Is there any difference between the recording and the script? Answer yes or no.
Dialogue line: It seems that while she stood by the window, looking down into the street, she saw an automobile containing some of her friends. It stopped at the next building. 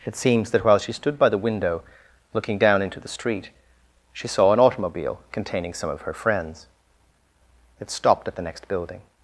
no